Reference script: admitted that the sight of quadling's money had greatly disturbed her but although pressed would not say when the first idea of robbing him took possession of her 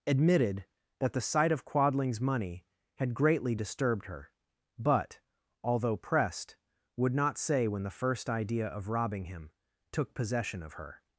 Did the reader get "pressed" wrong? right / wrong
right